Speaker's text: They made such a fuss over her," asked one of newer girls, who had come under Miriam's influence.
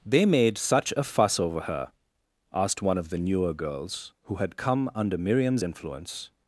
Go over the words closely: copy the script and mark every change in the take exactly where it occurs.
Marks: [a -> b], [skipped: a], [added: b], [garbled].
They made such a fuss over her," asked one of [added: the] newer girls, who had come under Miriam's influence.